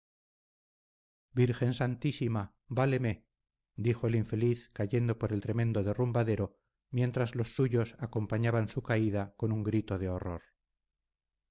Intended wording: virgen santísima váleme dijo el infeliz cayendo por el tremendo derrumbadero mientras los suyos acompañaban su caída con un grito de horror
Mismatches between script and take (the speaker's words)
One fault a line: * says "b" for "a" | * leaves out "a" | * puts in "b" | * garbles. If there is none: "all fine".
all fine